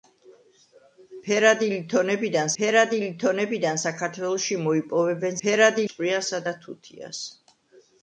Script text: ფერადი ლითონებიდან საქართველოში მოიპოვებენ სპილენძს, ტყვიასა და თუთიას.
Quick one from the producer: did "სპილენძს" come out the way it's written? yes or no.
no